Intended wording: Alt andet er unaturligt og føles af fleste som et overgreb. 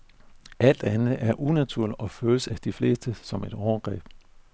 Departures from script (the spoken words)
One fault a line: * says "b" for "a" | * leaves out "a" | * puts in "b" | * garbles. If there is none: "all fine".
* puts in "de"